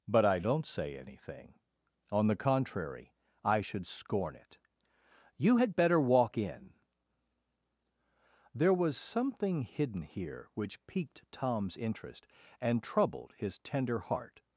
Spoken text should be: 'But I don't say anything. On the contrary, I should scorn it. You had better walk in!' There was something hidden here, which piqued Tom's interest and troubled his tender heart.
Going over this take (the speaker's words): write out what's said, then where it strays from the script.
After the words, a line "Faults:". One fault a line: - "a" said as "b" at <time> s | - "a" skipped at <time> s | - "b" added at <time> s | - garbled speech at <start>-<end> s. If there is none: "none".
'But I don't say anything. On the contrary, I should scorn it. You had better walk in!' There was something hidden here, which piqued Tom's interest and troubled his tender heart.
Faults:
none